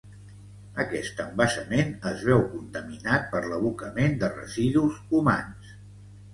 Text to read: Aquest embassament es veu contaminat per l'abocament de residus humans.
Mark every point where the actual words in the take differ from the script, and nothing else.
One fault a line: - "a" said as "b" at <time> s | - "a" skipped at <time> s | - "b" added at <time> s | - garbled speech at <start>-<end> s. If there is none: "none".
none